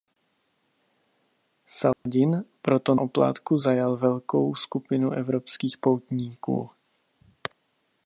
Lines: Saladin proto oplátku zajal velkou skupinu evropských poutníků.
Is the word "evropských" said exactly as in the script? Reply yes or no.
yes